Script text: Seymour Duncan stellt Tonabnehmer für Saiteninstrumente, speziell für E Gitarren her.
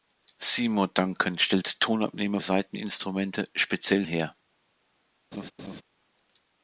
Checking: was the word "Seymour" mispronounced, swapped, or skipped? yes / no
no